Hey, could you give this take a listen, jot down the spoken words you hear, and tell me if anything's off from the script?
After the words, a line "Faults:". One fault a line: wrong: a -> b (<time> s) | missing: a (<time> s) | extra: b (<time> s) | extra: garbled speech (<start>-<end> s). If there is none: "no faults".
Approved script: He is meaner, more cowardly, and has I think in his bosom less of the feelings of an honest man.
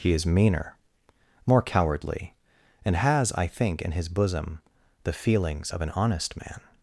He is meaner, more cowardly, and has I think in his bosom the feelings of an honest man.
Faults:
missing: less of (4.6 s)